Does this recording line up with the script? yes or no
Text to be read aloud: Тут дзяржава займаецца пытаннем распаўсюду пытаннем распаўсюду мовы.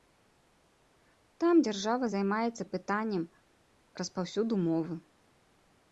no